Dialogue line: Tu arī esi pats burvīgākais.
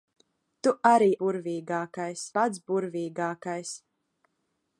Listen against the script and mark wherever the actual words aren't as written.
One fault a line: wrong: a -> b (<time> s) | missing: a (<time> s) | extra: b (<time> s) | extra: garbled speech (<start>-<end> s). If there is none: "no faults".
wrong: esi -> burvīgākais (1.2 s)